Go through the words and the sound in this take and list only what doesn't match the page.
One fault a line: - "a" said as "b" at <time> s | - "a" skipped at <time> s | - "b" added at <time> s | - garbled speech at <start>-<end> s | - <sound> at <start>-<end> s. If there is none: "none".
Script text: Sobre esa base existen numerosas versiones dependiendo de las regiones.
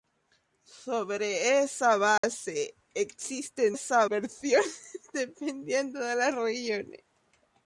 - dropout at 2.2-2.2 s
- "numerosas" said as "esa" at 3.7 s